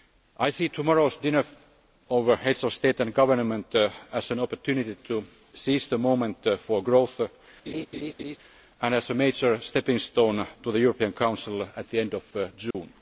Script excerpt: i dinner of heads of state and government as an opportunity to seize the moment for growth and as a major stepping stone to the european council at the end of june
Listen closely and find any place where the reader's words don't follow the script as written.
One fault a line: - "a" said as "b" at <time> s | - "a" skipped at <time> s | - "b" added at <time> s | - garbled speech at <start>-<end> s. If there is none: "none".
- "see tomorrow's" added at 0.5 s